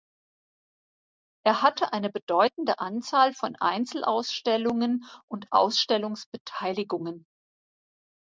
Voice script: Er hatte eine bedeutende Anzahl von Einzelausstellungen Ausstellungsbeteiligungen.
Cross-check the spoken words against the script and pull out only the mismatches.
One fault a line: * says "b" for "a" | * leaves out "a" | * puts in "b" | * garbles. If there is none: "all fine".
* puts in "und"